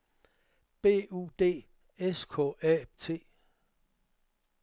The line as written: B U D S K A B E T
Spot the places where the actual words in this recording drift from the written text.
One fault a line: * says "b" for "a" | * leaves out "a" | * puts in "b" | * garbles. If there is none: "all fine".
* leaves out "B E"